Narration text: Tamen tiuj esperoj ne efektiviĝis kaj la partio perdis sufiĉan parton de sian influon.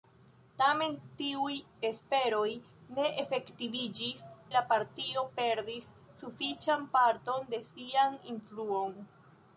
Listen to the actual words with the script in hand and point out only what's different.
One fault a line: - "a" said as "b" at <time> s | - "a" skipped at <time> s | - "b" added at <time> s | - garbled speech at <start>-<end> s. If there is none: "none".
- "kaj" skipped at 4.2 s